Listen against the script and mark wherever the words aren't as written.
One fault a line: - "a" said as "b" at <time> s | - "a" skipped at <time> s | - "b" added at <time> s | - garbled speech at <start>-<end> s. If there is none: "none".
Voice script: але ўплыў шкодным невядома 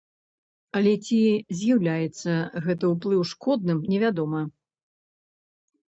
- "ці з'яўляецца гэты" added at 1.1 s